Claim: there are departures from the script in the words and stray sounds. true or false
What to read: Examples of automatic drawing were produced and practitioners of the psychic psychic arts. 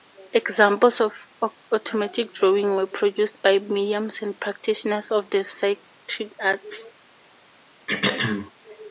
true